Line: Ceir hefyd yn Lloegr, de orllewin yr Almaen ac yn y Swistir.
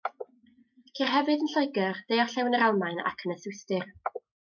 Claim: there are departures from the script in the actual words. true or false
false